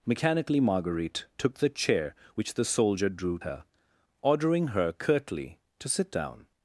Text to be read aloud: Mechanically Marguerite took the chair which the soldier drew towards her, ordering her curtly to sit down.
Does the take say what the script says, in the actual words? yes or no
no